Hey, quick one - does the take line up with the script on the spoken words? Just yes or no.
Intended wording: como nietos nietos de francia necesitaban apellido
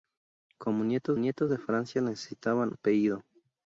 yes